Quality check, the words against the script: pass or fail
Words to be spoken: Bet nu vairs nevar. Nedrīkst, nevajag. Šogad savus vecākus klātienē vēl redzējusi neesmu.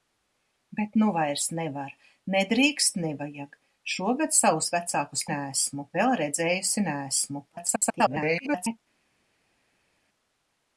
fail